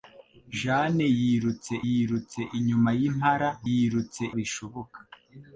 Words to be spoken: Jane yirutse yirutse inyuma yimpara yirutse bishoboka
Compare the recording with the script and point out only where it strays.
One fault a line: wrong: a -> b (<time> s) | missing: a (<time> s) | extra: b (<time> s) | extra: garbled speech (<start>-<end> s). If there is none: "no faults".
no faults